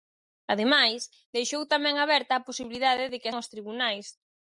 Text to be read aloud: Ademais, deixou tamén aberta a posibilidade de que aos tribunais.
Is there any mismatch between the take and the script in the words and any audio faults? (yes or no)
no